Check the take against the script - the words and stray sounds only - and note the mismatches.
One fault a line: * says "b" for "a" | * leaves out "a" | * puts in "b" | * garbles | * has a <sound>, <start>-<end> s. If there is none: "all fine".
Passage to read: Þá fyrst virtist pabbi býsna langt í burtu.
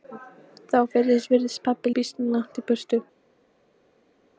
all fine